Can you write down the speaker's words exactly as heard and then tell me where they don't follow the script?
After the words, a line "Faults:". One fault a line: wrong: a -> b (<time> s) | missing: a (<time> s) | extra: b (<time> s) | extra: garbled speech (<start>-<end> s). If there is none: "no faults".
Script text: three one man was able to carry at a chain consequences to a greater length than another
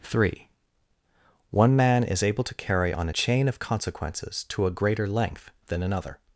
three one man is able to carry on a chain of consequences to a greater length than another
Faults:
wrong: was -> is (2.0 s)
wrong: at -> on (2.9 s)
extra: of (3.5 s)